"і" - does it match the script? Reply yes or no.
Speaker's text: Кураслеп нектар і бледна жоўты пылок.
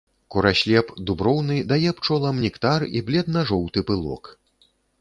yes